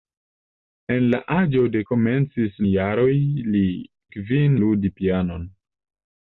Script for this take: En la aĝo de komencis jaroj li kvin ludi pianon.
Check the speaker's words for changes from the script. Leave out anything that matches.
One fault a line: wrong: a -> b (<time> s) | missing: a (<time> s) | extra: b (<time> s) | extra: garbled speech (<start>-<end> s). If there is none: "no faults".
no faults